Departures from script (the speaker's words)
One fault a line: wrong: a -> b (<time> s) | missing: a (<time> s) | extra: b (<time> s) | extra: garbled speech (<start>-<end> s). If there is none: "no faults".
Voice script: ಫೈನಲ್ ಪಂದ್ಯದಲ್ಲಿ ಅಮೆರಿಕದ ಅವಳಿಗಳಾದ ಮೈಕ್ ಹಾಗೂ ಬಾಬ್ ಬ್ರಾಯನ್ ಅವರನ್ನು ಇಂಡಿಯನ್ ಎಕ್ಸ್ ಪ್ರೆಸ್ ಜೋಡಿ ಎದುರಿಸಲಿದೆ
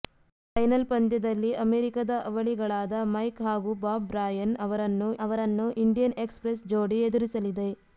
extra: ಅವರನ್ನು (5.2 s)